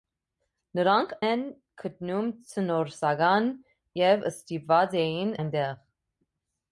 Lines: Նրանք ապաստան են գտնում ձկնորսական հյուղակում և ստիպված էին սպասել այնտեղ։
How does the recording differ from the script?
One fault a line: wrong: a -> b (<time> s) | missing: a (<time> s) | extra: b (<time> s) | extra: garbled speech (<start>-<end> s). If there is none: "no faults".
missing: ապաստան (1.1 s)
missing: հյուղակում (3.5 s)
missing: սպասել (5.3 s)